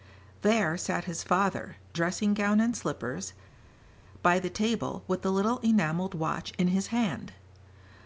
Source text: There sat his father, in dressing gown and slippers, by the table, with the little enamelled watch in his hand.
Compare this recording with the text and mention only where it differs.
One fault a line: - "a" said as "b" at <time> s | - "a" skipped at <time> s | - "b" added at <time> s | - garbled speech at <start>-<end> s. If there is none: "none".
- "in" skipped at 1.8 s